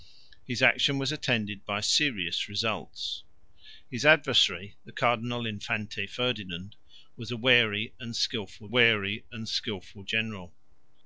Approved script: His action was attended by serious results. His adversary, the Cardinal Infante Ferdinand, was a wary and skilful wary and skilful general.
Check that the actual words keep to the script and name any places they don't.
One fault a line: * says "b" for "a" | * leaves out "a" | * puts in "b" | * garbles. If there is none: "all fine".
all fine